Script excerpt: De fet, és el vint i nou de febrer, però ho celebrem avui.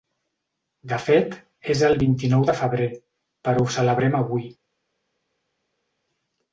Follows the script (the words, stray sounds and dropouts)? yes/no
yes